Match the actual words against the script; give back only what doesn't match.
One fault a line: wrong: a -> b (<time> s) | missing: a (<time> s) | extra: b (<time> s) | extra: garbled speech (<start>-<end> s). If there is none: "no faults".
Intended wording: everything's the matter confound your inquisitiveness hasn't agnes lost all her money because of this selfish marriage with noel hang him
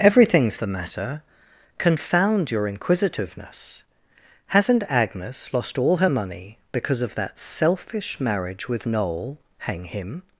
wrong: this -> that (7.1 s)